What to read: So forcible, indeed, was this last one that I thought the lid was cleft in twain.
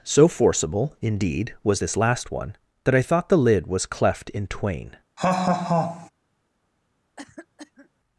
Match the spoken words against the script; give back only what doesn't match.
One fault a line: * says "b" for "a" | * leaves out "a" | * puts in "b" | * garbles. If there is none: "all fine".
all fine